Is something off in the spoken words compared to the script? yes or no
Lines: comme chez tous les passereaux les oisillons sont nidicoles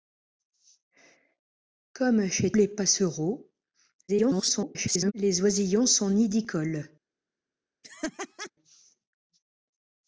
yes